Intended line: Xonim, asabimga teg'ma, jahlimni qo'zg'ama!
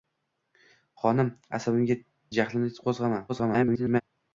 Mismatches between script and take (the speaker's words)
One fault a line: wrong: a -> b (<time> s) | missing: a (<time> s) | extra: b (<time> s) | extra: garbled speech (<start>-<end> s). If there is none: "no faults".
missing: teg'ma (2.0 s)
extra: garbled speech (3.3-4.0 s)